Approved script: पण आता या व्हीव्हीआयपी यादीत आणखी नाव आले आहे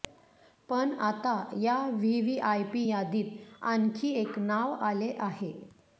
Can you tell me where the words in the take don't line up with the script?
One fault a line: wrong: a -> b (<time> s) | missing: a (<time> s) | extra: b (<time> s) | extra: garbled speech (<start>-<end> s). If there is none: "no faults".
extra: एक (4.1 s)